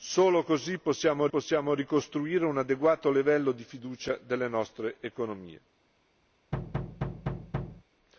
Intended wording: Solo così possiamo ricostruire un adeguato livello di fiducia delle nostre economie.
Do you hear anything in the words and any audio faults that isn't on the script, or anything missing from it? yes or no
yes